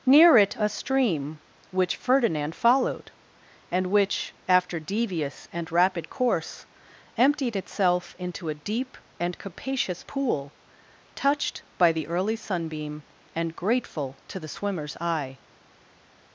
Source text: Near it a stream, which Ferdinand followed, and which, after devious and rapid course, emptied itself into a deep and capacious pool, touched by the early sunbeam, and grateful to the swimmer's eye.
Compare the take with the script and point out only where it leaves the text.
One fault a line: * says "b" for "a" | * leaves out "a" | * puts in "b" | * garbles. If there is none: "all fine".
all fine